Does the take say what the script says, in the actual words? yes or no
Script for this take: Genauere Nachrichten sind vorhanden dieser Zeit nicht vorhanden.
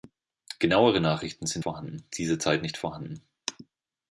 yes